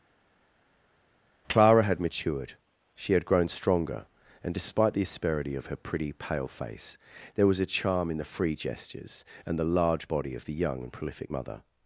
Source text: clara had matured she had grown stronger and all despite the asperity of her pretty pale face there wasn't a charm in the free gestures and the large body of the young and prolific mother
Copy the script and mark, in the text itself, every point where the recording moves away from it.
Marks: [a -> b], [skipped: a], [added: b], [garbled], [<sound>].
clara had matured she had grown stronger and [skipped: all] despite the asperity of her pretty pale face there [wasn't -> was] a charm in the free gestures and the large body of the young and prolific mother